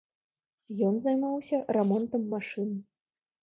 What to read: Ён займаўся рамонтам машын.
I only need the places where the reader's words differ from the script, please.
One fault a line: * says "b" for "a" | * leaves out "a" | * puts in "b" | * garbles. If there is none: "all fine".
all fine